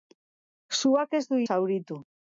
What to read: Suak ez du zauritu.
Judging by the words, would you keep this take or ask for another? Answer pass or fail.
pass